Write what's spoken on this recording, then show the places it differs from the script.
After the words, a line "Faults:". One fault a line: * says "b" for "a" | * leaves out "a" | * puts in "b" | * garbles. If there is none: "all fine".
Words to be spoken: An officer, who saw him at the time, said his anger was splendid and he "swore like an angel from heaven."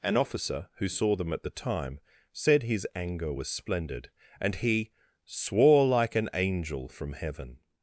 An officer, who saw them at the time, said his anger was splendid and he "swore like an angel from heaven."
Faults:
* says "them" for "him"